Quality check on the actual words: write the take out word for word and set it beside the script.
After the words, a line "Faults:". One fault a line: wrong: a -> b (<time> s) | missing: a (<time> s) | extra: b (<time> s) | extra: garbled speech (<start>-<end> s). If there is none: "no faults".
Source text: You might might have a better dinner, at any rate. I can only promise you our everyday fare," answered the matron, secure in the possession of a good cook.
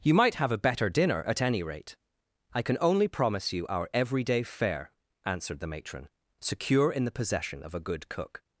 You might have a better dinner, at any rate. I can only promise you our everyday fare," answered the matron, secure in the possession of a good cook.
Faults:
missing: might (0.3 s)